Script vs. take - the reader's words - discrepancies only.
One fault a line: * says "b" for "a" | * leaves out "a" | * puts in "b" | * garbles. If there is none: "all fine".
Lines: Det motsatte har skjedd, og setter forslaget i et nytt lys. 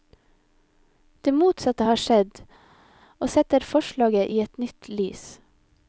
all fine